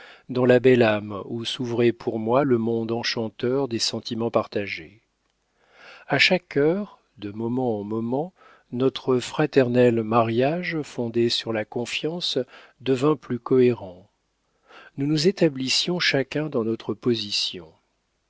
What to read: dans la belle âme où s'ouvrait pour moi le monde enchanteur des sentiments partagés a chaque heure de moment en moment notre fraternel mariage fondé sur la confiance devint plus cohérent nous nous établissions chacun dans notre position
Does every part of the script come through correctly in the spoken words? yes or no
yes